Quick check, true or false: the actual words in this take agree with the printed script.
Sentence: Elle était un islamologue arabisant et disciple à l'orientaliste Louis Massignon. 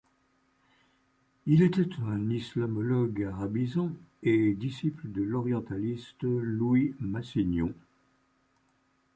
false